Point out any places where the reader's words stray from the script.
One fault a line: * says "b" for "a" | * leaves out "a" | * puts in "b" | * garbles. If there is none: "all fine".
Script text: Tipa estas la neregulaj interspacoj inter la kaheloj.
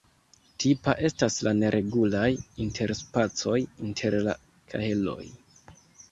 all fine